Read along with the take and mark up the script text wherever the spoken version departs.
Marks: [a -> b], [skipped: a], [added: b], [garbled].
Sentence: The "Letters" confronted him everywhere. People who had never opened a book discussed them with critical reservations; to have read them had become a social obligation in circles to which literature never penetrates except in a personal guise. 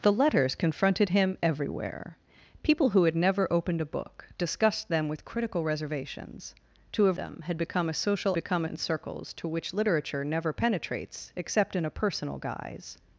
The "Letters" confronted him everywhere. People who had never opened a book discussed them with critical reservations; to have [skipped: read] them had become a social [obligation -> become] in circles to which literature never penetrates except in a personal guise.